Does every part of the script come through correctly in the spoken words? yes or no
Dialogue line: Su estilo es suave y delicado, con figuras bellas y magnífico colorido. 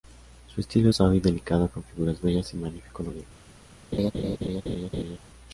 yes